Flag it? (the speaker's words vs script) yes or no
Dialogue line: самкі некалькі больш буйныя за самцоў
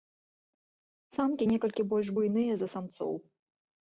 no